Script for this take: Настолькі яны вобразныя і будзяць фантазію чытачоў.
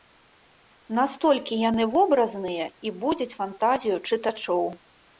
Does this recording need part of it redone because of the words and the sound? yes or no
no